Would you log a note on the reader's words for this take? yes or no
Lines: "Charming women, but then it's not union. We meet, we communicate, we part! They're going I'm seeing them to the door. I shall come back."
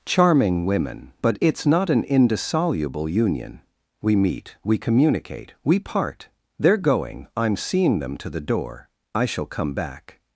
yes